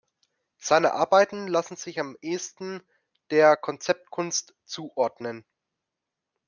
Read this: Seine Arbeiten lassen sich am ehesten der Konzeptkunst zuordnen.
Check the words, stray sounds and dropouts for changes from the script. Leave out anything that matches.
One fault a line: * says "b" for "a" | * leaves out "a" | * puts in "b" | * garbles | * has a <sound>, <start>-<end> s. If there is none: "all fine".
all fine